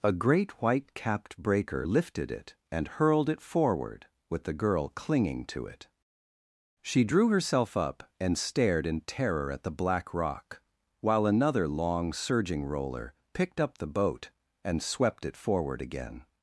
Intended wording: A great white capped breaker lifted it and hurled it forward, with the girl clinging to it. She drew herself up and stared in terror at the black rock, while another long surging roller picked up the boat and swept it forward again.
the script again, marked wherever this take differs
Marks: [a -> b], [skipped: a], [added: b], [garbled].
A great white capped breaker lifted it and hurled it forward, with the girl clinging to it. She drew herself up and stared in terror at the black rock, while another long surging roller picked up the boat and swept it forward again.